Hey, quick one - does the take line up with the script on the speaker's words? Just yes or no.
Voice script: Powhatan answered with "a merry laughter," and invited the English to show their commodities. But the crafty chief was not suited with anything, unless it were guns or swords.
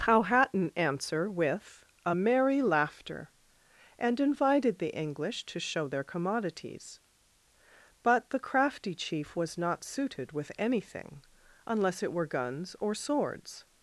no